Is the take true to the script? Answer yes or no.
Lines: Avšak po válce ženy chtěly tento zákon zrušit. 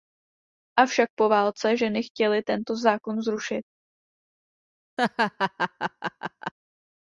yes